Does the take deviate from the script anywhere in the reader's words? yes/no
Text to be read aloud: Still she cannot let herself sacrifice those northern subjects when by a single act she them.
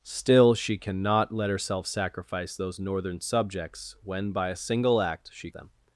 no